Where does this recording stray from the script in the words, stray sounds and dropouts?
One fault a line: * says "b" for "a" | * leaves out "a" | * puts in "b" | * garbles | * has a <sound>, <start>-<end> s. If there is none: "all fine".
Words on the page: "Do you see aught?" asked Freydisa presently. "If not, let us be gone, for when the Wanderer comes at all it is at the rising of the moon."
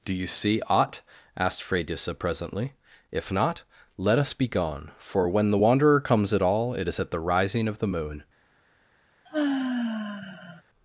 * has a sigh, 9.3-10.6 s